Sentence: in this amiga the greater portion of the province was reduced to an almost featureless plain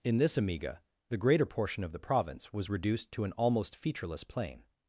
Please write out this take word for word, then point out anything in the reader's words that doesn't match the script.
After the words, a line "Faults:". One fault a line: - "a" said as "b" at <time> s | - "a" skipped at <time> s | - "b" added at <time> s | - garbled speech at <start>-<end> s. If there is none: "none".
in this amiga the greater portion of the province was reduced to an almost featureless plain
Faults:
none